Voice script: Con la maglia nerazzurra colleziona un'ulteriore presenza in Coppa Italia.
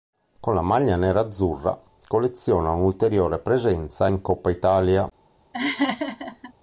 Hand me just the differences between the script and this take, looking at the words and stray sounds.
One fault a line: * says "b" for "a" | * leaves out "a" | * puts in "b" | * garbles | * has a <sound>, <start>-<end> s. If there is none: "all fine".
* has a laugh, 5.5-6.5 s